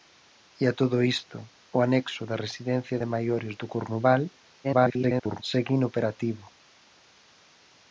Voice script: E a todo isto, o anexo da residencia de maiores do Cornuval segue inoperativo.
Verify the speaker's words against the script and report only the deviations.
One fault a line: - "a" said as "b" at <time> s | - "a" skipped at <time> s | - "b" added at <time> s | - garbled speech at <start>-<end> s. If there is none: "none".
- garbled speech at 4.6-5.4 s